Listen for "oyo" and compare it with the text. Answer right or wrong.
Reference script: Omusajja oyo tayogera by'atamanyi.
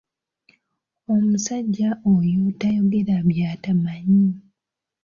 right